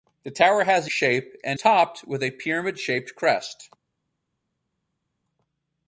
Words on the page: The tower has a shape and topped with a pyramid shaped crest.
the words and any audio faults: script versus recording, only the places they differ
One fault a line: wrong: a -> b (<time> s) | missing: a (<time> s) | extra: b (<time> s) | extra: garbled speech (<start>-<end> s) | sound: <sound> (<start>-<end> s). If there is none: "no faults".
no faults